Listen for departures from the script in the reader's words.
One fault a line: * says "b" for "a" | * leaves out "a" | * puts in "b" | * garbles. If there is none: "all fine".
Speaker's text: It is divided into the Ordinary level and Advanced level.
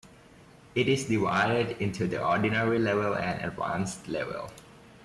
all fine